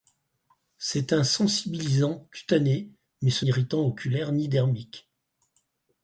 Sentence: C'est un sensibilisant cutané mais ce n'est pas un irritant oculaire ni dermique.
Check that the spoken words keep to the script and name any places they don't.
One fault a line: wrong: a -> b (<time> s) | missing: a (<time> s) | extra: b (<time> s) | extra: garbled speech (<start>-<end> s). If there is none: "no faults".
missing: n'est pas un (3.5 s)